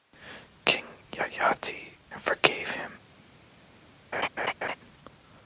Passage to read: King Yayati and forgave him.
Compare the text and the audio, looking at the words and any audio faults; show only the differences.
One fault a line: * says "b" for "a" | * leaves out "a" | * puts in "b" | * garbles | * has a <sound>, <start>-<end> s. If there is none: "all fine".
* has a laugh, 4.1-4.8 s